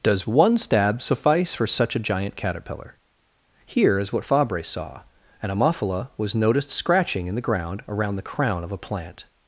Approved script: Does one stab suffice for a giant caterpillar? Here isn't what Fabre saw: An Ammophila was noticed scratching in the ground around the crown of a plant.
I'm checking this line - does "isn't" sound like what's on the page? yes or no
no